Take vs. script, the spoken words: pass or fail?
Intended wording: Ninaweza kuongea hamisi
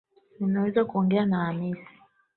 fail